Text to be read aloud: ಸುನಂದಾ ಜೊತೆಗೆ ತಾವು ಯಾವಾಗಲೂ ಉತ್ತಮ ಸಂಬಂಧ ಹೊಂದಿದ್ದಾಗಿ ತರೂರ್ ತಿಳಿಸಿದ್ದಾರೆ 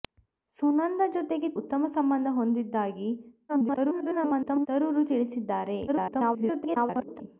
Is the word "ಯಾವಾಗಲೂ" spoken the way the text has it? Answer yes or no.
no